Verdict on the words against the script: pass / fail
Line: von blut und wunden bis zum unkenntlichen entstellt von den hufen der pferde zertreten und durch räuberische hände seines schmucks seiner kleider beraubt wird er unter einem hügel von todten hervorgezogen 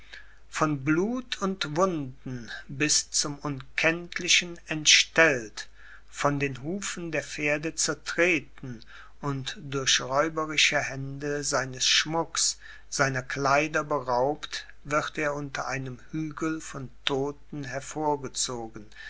pass